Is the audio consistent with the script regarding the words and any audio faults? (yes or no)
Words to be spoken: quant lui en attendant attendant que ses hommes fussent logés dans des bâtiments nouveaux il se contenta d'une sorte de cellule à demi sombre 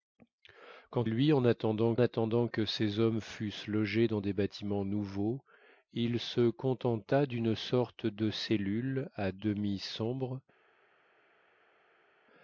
yes